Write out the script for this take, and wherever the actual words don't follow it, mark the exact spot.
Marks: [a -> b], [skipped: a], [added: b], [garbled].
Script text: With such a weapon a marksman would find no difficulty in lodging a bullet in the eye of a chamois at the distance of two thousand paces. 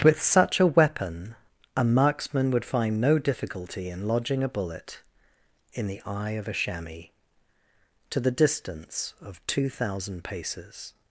With such a weapon a marksman would find no difficulty in lodging a bullet in the eye of a chamois [at -> to] the distance of two thousand paces.